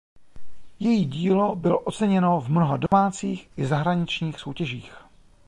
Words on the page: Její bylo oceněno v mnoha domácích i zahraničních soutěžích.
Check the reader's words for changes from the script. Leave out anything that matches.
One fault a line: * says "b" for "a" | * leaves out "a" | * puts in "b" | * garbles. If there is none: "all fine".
* puts in "dílo"